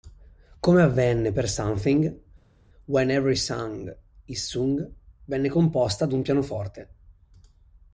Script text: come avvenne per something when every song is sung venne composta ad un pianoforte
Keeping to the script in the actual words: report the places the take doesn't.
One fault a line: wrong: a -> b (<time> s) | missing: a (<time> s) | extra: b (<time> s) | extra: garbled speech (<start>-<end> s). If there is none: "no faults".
no faults